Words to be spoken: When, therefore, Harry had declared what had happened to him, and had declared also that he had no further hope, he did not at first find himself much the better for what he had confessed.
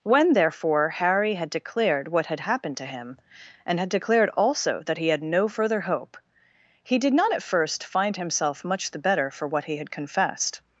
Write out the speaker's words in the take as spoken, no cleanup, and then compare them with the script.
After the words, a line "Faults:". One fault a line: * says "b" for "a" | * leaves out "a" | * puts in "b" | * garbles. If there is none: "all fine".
When, therefore, Harry had declared what had happened to him, and had declared also that he had no further hope, he did not at first find himself much the better for what he had confessed.
Faults:
all fine